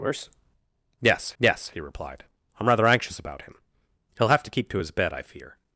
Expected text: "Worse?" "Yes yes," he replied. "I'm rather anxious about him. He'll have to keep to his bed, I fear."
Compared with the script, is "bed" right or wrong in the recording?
right